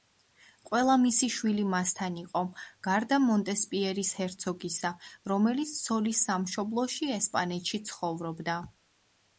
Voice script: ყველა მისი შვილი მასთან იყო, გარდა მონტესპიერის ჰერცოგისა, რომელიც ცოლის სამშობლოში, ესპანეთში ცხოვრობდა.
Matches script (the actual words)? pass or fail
pass